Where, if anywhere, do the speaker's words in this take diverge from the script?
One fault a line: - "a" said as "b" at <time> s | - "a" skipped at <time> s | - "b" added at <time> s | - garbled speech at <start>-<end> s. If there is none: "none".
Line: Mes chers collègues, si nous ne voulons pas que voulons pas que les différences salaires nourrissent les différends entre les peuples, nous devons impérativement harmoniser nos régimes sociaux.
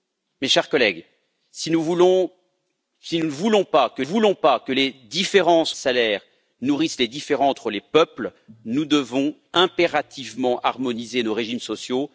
none